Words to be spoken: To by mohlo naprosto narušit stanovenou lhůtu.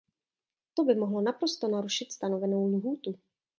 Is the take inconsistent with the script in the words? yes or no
no